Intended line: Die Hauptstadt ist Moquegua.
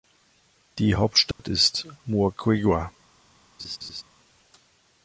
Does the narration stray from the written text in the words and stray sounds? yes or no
yes